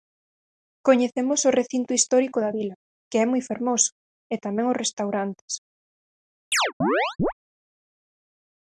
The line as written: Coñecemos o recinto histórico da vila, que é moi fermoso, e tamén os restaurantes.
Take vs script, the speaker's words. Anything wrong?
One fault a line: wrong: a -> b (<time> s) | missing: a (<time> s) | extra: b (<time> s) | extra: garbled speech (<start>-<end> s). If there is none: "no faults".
no faults